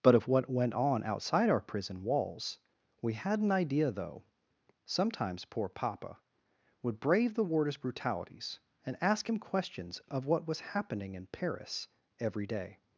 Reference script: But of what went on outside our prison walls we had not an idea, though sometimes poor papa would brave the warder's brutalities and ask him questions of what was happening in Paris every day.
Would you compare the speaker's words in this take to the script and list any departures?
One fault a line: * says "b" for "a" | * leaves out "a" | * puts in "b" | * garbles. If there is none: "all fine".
* leaves out "not"